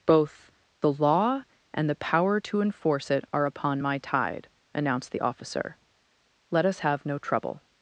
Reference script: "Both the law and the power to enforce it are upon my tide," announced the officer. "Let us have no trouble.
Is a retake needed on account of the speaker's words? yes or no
no